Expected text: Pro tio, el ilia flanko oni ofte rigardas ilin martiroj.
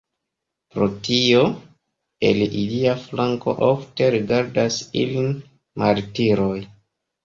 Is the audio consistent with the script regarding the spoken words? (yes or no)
no